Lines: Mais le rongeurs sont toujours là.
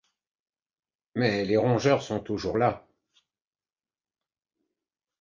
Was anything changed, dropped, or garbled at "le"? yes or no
yes